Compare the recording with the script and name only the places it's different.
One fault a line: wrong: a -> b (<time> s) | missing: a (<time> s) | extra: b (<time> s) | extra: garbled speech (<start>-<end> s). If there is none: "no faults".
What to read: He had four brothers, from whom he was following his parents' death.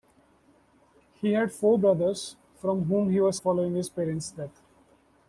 no faults